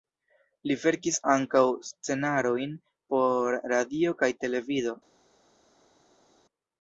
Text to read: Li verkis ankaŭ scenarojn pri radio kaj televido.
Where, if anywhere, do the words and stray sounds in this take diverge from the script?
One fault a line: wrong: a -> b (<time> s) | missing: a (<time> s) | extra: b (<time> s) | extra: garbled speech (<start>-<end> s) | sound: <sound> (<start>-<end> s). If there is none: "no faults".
wrong: pri -> por (3.1 s)